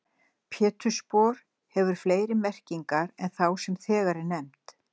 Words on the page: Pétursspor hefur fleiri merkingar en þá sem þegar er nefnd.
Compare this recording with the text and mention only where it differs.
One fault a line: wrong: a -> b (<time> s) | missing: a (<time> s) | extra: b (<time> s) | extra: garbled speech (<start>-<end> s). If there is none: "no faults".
no faults